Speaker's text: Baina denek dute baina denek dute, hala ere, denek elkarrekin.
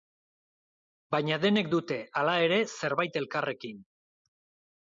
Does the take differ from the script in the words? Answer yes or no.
yes